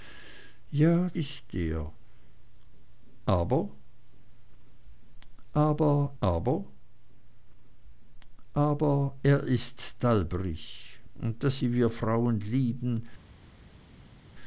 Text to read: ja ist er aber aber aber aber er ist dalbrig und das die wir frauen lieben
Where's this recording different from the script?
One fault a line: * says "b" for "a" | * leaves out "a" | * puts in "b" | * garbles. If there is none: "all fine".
all fine